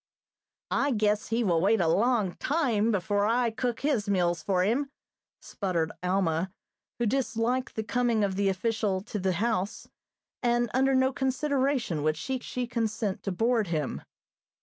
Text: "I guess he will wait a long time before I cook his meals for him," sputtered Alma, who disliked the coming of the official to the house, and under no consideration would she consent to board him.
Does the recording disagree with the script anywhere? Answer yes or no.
yes